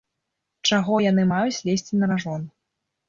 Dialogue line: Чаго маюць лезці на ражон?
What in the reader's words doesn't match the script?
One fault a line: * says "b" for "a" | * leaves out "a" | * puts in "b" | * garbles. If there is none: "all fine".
* puts in "яны"